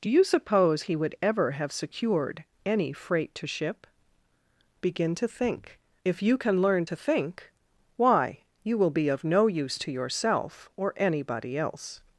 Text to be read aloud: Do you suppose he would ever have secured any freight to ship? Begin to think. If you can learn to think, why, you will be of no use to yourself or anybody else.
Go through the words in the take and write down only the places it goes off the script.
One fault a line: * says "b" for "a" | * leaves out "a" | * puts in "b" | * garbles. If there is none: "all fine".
all fine